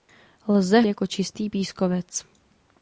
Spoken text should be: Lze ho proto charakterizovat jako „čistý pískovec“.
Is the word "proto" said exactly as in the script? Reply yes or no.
no